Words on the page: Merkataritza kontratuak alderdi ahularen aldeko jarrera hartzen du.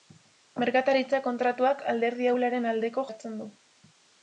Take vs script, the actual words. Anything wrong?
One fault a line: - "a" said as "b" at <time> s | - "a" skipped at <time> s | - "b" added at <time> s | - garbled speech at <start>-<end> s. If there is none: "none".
- "jarrera" skipped at 3.1 s